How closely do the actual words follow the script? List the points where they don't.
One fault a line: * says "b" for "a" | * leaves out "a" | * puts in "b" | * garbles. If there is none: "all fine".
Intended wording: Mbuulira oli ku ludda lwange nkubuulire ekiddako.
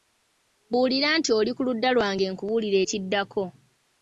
* puts in "nti"